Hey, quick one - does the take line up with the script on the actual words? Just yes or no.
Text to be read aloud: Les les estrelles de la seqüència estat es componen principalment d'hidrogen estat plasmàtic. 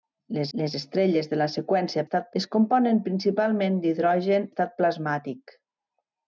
yes